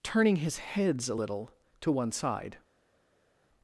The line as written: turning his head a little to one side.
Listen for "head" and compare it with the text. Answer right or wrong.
wrong